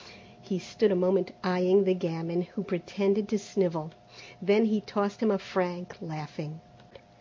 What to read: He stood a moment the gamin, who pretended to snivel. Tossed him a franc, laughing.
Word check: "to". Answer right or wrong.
right